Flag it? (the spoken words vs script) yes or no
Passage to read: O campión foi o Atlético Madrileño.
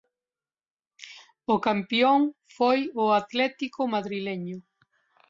no